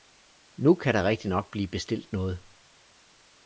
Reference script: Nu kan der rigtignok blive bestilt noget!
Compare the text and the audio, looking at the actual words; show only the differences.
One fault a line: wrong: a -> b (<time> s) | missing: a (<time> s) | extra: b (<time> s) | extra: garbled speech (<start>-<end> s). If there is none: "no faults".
no faults